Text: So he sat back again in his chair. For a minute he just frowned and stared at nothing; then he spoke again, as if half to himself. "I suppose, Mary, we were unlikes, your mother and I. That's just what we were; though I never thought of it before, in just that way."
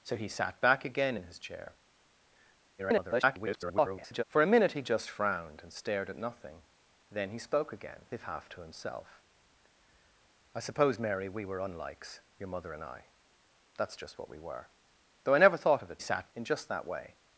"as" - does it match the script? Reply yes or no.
no